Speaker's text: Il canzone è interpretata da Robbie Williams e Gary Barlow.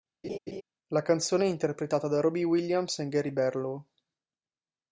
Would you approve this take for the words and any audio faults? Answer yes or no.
no